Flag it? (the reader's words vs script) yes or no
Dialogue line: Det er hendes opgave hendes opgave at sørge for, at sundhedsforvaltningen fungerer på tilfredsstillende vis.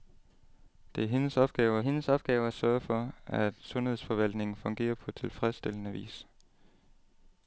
no